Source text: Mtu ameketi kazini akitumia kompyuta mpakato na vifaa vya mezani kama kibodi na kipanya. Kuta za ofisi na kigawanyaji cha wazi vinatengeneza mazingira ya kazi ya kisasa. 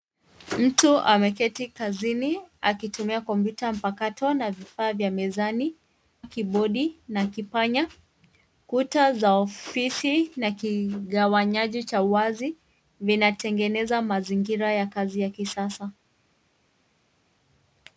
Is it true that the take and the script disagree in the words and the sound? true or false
true